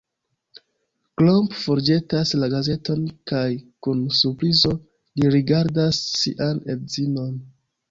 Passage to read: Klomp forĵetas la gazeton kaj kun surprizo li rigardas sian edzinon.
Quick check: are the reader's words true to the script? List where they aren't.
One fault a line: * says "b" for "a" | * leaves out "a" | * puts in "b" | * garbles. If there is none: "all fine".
all fine